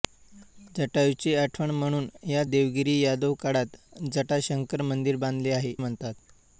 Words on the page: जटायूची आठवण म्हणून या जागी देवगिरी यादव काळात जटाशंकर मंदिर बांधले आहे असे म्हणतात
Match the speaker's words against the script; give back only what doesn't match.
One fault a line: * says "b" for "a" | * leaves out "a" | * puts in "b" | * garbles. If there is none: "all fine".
* leaves out "जागी"
* leaves out "असे"